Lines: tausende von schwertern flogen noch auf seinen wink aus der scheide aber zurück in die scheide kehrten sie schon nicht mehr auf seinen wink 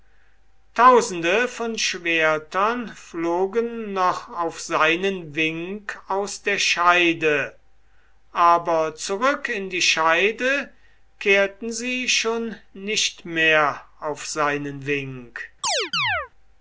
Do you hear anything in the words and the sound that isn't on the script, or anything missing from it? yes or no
yes